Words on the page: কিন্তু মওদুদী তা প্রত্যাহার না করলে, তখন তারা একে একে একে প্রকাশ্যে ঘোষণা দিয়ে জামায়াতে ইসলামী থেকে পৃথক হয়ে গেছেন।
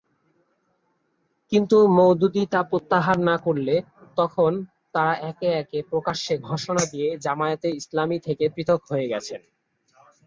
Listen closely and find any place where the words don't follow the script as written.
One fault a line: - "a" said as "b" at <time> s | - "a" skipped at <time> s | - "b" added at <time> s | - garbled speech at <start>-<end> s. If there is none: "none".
- "একে" skipped at 5.8 s